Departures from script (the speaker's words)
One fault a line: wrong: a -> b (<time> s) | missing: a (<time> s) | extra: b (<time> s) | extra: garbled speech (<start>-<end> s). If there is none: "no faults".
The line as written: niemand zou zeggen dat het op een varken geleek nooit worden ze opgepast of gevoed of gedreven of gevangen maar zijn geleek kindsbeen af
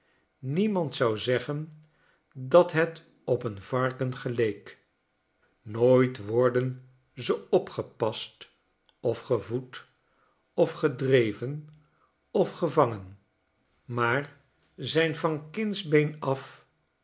wrong: geleek -> van (15.2 s)